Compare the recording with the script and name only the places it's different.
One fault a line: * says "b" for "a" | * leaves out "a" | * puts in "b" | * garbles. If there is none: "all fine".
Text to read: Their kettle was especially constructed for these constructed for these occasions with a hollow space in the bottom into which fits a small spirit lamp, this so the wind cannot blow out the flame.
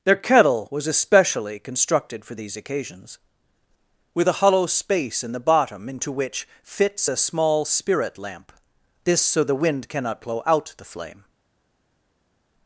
* leaves out "constructed for these"